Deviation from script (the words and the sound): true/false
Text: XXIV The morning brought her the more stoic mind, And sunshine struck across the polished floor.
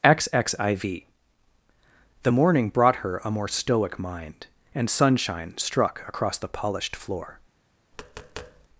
true